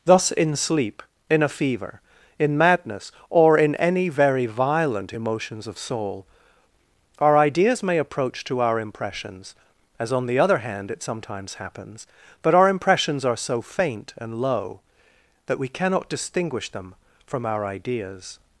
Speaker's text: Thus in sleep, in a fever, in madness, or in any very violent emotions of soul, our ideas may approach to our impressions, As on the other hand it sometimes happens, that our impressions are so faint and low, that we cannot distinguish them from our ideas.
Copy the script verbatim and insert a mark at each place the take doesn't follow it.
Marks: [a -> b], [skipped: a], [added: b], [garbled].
Thus in sleep, in a fever, in madness, or in any very violent emotions of soul, our ideas may approach to our impressions, As on the other hand it sometimes happens, [that -> but] our impressions are so faint and low, that we cannot distinguish them from our ideas.